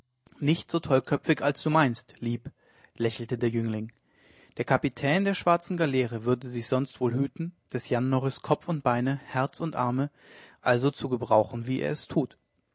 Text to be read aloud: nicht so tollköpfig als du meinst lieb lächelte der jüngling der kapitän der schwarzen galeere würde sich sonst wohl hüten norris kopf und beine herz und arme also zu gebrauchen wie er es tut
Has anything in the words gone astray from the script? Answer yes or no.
yes